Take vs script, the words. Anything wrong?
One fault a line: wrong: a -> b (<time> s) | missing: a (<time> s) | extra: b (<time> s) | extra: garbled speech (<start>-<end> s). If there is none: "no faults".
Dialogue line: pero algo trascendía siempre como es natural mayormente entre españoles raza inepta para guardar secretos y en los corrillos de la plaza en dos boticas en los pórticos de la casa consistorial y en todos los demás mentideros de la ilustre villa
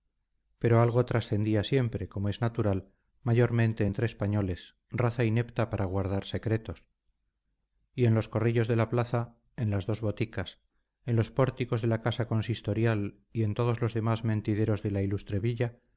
extra: las (9.7 s)